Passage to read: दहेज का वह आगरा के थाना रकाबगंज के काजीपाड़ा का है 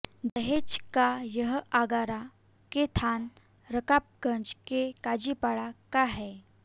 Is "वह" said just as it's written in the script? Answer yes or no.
no